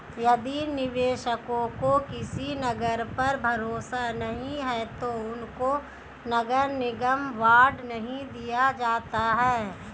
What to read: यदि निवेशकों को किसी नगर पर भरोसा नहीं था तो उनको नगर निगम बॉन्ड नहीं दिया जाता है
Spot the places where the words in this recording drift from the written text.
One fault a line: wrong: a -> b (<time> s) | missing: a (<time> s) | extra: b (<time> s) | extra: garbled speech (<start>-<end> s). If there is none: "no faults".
wrong: था -> है (4.6 s)